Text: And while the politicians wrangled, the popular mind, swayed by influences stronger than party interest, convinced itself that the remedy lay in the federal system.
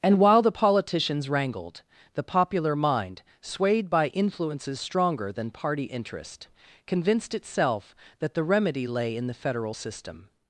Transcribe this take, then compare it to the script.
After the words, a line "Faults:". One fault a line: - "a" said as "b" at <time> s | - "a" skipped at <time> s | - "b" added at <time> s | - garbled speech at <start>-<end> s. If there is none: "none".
And while the politicians wrangled, the popular mind, swayed by influences stronger than party interest, convinced itself that the remedy lay in the federal system.
Faults:
none